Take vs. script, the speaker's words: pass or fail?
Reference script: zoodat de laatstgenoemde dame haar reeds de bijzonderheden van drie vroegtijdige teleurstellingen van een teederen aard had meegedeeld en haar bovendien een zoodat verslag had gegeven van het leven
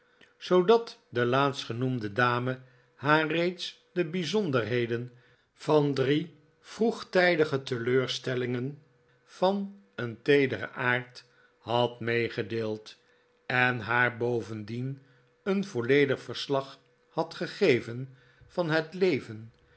fail